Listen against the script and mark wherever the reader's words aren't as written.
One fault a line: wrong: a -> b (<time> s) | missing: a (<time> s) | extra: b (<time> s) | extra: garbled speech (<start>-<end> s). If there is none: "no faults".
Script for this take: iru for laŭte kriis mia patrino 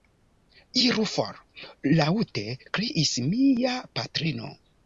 no faults